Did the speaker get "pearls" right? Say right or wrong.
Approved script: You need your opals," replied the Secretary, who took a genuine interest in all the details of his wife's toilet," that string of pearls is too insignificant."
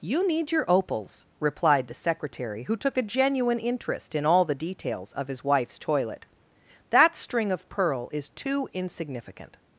wrong